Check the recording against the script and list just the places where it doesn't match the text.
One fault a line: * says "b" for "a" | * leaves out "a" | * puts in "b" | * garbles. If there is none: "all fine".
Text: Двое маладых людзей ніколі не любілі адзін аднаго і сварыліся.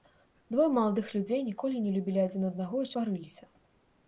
all fine